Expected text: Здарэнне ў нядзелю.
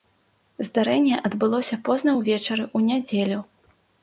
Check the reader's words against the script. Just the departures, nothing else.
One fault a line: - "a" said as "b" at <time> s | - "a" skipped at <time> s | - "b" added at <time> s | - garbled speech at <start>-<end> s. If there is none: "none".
- "адбылося позна ўвечары" added at 1.3 s